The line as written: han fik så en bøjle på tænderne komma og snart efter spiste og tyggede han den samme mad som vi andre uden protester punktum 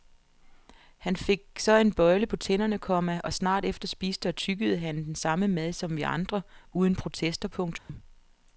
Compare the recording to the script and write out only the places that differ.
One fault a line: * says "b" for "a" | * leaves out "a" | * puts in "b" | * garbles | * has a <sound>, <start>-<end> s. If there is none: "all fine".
* has a dropout, 7.8-7.9 s